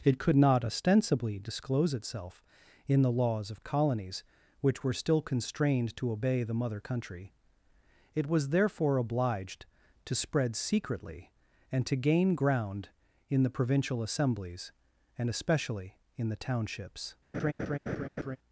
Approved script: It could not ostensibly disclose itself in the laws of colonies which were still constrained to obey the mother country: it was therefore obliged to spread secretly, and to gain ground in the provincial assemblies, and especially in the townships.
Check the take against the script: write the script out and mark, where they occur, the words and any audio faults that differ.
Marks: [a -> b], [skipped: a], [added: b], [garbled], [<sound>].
It could not ostensibly disclose itself in the laws of colonies which were still constrained to obey the mother country: it was therefore obliged to spread secretly, and to gain ground in the provincial assemblies, and especially in the townships. [laugh]